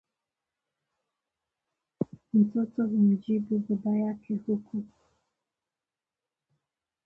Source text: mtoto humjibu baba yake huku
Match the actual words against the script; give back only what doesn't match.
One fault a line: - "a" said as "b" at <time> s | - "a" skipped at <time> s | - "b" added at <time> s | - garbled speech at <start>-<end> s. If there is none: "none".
none